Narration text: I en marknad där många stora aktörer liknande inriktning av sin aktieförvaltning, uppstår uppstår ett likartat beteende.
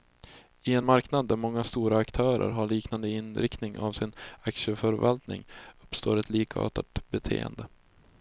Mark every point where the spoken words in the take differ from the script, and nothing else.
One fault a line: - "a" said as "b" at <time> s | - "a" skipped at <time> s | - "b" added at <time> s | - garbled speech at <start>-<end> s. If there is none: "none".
- "har" added at 2.5 s
- "uppstår" skipped at 6.2 s